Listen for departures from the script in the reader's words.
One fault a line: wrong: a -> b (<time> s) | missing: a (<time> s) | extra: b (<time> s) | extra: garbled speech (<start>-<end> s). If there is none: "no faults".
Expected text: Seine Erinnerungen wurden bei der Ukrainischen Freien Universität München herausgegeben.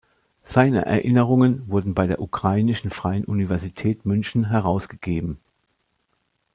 no faults